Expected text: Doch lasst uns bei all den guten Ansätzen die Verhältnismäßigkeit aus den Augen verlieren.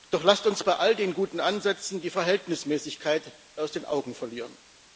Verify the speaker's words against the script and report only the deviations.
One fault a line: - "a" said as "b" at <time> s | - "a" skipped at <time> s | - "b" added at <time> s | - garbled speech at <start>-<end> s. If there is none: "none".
none